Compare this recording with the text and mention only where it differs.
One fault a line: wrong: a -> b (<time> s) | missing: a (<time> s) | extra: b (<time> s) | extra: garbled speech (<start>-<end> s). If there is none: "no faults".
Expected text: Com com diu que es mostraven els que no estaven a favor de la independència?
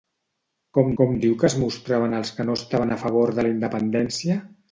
no faults